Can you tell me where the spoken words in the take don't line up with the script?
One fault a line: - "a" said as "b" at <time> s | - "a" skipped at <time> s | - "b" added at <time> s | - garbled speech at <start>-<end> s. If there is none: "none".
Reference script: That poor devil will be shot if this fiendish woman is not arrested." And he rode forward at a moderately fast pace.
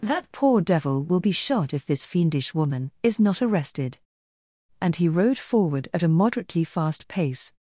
none